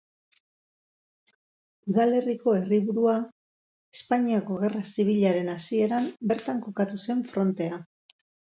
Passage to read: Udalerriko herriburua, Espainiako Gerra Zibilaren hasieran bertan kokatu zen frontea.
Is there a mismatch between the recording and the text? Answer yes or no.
no